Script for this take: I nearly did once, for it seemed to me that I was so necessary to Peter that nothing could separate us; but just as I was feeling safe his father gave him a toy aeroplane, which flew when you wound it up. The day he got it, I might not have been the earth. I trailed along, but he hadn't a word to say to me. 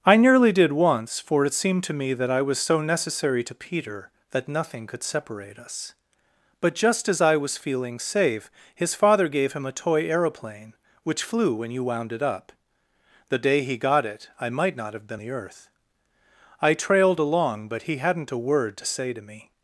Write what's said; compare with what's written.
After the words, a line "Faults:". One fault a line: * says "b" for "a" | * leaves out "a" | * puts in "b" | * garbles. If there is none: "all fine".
I nearly did once, for it seemed to me that I was so necessary to Peter that nothing could separate us; but just as I was feeling safe his father gave him a toy aeroplane, which flew when you wound it up. The day he got it, I might not have been the earth. I trailed along, but he hadn't a word to say to me.
Faults:
all fine